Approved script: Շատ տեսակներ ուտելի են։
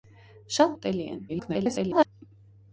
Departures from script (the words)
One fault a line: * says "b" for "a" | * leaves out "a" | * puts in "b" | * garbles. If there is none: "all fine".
* leaves out "տեսակներ"
* garbles